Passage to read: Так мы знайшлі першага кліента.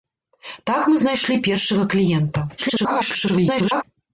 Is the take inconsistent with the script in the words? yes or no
yes